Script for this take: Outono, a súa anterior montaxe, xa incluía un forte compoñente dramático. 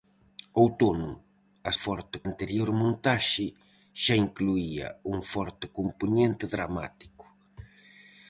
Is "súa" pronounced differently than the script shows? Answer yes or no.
yes